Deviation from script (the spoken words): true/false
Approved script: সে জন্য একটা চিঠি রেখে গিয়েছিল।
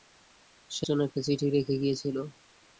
false